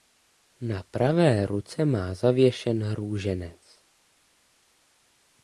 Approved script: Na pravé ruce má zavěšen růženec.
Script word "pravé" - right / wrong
right